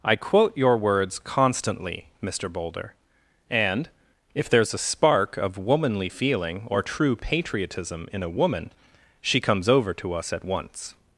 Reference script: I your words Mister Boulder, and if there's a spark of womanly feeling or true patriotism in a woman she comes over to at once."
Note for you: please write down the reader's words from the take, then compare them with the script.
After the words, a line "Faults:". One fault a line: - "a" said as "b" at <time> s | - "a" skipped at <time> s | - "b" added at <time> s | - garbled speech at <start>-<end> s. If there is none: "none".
I quote your words constantly, Mister Boulder, and if there's a spark of womanly feeling or true patriotism in a woman she comes over to us at once."
Faults:
- "quote" added at 0.1 s
- "constantly" added at 1.2 s
- "us" added at 10.1 s